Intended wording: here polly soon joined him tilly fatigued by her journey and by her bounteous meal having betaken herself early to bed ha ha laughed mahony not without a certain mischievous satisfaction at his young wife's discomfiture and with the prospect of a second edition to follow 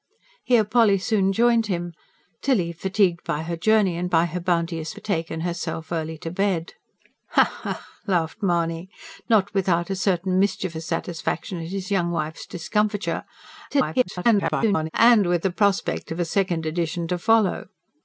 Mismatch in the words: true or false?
true